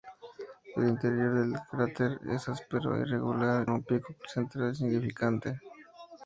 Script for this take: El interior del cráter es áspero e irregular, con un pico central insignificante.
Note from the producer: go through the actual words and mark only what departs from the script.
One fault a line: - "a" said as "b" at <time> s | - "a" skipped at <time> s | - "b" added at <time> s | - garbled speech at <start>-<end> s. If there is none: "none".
- "con" skipped at 3.7 s